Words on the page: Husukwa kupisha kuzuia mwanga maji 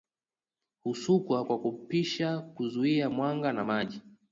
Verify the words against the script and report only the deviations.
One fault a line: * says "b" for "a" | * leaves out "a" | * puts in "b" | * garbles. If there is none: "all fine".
* puts in "kwa"
* puts in "na"